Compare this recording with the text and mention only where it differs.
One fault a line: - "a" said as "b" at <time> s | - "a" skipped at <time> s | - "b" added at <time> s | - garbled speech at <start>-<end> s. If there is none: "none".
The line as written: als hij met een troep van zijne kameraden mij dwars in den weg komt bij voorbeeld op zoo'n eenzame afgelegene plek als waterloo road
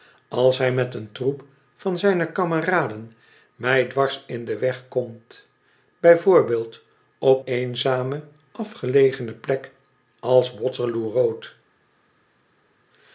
- "zoo'n" skipped at 7.5 s